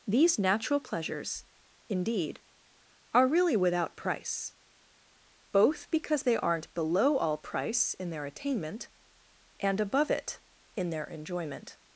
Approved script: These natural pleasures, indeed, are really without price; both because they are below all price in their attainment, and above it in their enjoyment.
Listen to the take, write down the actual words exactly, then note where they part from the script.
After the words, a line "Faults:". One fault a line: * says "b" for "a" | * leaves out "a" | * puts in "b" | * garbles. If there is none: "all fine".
These natural pleasures, indeed, are really without price; both because they aren't below all price in their attainment, and above it in their enjoyment.
Faults:
* says "aren't" for "are"